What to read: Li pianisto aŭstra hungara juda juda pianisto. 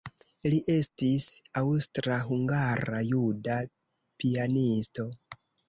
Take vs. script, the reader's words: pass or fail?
fail